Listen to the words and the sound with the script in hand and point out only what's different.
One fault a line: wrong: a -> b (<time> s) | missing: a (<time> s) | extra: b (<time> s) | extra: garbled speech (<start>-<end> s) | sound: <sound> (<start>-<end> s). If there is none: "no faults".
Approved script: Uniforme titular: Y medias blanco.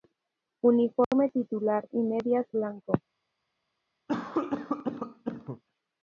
sound: dropout (1.0-1.1 s)
sound: cough (4.1-5.6 s)